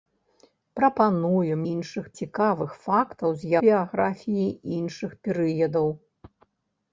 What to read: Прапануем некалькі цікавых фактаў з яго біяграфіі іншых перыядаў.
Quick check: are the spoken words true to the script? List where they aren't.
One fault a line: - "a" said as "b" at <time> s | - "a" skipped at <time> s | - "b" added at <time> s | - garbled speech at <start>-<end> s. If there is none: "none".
- "некалькі" said as "іншых" at 1.7 s
- "яго" skipped at 3.5 s